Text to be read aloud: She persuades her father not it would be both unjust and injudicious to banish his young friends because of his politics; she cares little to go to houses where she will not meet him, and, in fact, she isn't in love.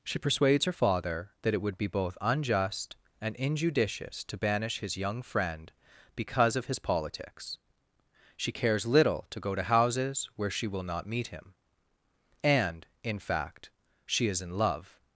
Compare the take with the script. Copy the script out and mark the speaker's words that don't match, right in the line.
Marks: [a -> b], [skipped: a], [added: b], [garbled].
She persuades her father [not -> that] it would be both unjust and injudicious to banish his young [friends -> friend] because of his politics; she cares little to go to houses where she will not meet him, and, in fact, she [isn't -> is] in love.